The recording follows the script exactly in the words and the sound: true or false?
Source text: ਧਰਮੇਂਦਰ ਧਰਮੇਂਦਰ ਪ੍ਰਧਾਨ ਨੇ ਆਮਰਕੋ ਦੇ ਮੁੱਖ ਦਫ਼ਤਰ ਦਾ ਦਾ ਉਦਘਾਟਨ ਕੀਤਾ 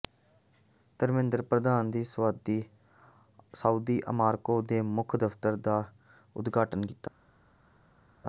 false